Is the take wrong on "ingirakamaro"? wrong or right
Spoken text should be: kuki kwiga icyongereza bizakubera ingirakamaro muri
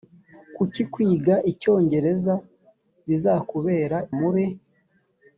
wrong